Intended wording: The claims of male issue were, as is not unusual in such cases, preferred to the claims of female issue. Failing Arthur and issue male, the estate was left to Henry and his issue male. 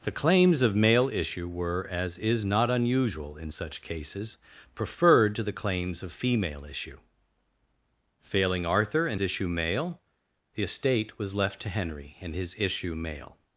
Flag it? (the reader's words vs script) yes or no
no